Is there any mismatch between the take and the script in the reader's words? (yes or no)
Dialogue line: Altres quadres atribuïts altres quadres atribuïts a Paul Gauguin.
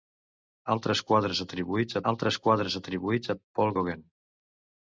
no